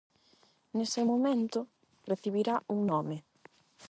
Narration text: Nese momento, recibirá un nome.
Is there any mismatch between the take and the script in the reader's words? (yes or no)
no